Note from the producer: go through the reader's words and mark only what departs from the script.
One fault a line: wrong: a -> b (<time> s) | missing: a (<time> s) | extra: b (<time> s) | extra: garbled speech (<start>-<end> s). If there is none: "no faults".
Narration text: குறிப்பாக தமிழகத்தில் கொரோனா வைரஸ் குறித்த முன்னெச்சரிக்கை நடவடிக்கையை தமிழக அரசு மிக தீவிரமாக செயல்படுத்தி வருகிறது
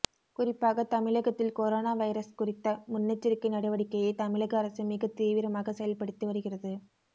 no faults